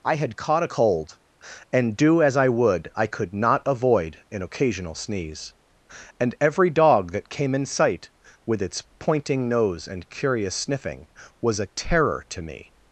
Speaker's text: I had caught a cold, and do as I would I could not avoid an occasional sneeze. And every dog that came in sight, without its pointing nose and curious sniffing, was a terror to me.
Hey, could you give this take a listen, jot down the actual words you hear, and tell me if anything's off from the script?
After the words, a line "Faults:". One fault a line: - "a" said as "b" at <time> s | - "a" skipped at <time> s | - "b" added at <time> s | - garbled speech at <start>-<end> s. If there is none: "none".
I had caught a cold, and do as I would I could not avoid an occasional sneeze. And every dog that came in sight, with its pointing nose and curious sniffing, was a terror to me.
Faults:
- "without" said as "with" at 8.5 s